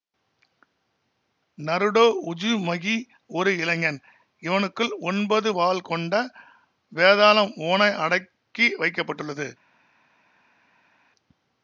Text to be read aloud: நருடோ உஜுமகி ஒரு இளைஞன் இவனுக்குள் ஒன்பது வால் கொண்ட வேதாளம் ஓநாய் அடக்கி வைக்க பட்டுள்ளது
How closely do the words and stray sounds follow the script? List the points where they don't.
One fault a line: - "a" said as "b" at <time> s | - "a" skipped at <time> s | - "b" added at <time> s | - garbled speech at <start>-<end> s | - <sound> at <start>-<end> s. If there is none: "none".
none